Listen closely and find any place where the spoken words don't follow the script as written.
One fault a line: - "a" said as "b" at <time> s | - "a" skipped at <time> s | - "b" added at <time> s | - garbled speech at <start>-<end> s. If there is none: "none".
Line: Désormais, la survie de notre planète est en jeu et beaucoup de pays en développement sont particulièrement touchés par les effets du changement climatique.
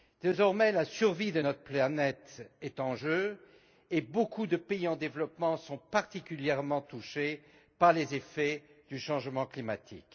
none